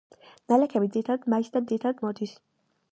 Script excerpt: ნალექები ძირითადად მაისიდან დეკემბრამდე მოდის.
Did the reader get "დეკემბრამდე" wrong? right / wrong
wrong